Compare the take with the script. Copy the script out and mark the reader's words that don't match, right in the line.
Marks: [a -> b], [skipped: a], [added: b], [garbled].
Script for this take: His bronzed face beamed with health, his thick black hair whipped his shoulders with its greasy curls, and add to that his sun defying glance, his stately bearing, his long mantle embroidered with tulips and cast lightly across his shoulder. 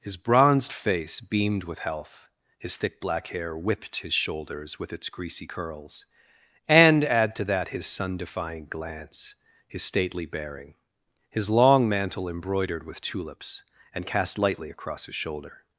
His bronzed face beamed with health, his thick black hair whipped his shoulders with its greasy curls, and add to that his sun defying glance, his stately bearing, his long mantle embroidered with tulips and cast lightly across his shoulder.